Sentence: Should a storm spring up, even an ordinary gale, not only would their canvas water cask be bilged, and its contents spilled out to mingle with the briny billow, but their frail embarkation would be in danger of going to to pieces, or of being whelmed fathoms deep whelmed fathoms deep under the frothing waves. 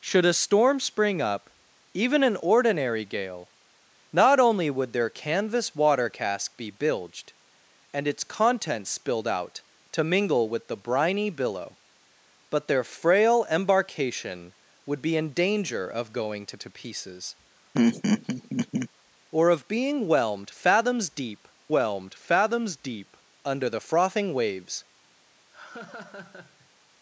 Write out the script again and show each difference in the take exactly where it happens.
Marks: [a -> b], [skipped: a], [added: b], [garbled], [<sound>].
Should a storm spring up, even an ordinary gale, not only would their canvas water cask be bilged, and its contents spilled out to mingle with the briny billow, but their frail embarkation would be in danger of going to to pieces, [laugh] or of being whelmed fathoms deep whelmed fathoms deep under the frothing waves. [laugh]